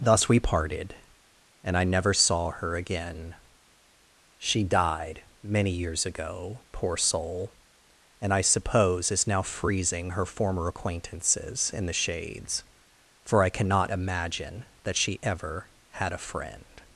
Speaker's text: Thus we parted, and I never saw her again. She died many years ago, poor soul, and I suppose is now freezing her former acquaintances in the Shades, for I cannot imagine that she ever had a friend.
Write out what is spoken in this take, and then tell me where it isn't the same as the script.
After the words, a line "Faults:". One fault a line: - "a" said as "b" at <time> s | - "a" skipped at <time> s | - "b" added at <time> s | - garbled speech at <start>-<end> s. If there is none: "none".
Thus we parted, and I never saw her again. She died many years ago, poor soul, and I suppose is now freezing her former acquaintances in the Shades, for I cannot imagine that she ever had a friend.
Faults:
none